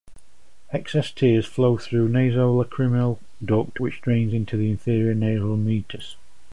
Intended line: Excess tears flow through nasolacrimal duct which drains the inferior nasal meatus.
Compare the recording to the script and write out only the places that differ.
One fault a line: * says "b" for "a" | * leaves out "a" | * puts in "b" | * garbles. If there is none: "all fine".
* puts in "into"